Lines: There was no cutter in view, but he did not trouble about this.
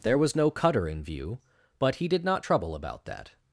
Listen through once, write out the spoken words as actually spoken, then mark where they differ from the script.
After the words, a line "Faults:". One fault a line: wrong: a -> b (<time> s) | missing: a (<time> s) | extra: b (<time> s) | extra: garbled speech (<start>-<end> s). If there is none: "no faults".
There was no cutter in view, but he did not trouble about that.
Faults:
wrong: this -> that (3.0 s)